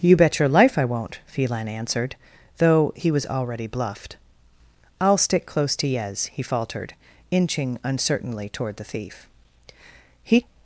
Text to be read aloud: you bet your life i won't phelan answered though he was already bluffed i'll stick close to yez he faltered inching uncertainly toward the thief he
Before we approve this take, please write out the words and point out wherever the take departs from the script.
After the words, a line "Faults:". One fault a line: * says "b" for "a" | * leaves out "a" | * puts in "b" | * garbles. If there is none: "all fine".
you bet your life i won't phelan answered though he was already bluffed i'll stick close to yez he faltered inching uncertainly toward the thief he
Faults:
all fine